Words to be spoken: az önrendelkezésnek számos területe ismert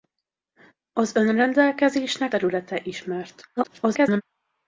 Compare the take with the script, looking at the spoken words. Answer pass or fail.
fail